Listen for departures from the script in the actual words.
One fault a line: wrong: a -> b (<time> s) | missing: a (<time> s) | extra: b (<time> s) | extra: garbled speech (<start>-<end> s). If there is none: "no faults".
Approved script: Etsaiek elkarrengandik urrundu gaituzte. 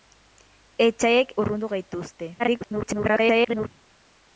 missing: elkarrengandik (1.3 s)
extra: garbled speech (2.4-3.7 s)